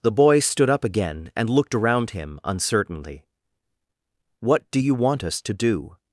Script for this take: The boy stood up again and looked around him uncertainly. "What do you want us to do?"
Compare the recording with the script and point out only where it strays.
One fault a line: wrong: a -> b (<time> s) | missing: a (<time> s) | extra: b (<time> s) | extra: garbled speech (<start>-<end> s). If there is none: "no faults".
no faults